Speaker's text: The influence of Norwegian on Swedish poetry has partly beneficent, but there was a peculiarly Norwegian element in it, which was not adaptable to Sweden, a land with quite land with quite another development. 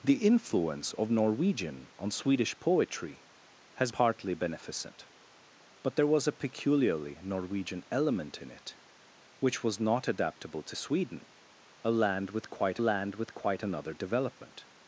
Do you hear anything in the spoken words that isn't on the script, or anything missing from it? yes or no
no